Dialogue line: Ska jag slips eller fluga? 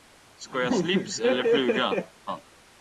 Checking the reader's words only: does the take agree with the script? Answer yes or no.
yes